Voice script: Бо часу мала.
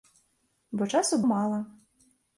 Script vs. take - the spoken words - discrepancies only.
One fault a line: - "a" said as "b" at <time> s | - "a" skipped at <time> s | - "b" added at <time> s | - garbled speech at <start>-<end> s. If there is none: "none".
none